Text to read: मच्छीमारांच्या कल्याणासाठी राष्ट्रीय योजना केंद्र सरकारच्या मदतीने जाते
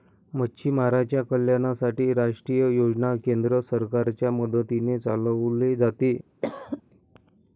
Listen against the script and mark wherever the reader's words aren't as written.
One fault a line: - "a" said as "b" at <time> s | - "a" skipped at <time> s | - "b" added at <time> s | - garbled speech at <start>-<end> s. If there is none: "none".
- "चालवले" added at 5.0 s